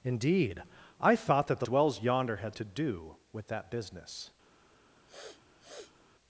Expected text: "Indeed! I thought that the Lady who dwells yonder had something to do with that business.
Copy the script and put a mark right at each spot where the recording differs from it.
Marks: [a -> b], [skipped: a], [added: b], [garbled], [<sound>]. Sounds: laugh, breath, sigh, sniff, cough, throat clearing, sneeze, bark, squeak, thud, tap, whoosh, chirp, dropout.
"Indeed! I thought that the [skipped: Lady who] dwells yonder had [skipped: something] to do with that business. [sniff]